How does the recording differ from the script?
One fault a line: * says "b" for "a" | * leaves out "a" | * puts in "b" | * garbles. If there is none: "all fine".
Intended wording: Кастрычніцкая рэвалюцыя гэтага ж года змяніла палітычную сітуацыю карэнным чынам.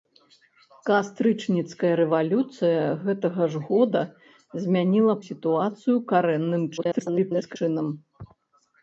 * leaves out "палітычную"
* garbles